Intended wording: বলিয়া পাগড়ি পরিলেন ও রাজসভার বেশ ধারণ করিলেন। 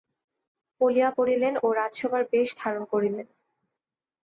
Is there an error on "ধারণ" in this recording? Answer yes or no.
no